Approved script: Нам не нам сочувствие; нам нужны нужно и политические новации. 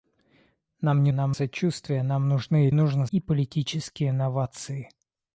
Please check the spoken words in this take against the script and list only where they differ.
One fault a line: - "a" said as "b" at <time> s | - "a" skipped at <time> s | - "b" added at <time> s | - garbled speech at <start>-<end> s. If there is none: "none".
none